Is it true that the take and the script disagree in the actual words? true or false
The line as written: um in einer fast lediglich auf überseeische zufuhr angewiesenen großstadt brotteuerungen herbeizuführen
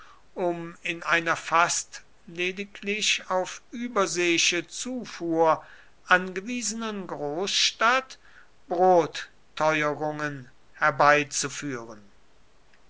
false